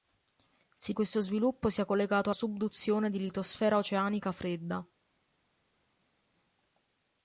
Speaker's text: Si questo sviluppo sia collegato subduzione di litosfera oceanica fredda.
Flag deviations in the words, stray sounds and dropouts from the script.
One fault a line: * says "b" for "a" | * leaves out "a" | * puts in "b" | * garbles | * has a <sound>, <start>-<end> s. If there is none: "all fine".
all fine